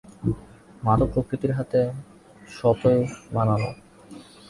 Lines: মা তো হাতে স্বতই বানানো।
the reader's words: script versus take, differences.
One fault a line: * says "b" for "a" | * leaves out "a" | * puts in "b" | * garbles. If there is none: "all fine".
* puts in "প্রকৃতির"